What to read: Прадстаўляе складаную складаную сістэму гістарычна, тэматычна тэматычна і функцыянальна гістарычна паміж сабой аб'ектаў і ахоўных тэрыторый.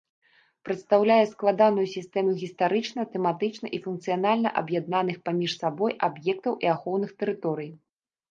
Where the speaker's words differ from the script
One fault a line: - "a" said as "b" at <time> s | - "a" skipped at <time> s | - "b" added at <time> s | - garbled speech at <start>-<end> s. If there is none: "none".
- "складаную" skipped at 1.8 s
- "тэматычна" skipped at 3.7 s
- "гістарычна" said as "аб'яднаных" at 4.6 s